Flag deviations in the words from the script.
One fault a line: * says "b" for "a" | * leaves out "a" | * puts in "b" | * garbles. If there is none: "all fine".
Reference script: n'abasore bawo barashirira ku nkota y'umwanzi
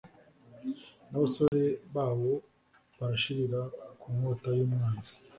all fine